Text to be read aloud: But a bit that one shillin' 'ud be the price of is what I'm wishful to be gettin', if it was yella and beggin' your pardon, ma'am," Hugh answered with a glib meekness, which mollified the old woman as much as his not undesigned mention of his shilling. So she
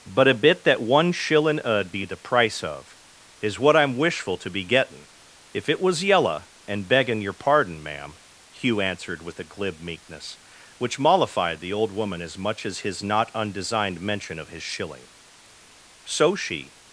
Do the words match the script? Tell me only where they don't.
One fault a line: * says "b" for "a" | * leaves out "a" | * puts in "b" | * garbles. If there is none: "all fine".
all fine